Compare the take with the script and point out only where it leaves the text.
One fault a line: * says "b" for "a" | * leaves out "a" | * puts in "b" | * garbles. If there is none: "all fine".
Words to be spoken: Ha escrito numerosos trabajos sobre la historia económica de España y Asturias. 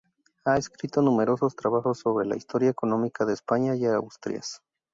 all fine